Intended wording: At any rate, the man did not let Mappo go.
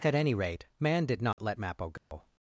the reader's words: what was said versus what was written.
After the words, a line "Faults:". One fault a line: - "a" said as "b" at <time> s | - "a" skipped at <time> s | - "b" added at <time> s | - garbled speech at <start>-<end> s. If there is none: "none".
At any rate, man did not let Mappo go.
Faults:
- "the" skipped at 0.7 s